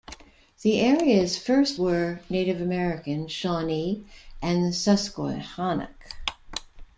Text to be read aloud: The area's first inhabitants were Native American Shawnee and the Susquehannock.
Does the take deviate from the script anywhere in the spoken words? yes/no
yes